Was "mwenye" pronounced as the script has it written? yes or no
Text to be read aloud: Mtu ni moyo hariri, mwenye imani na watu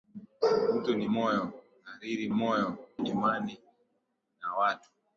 no